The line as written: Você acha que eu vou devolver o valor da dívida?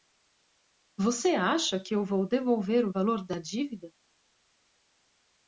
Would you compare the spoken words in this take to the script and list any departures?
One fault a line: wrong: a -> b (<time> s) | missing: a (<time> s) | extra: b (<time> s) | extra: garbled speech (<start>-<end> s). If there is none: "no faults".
no faults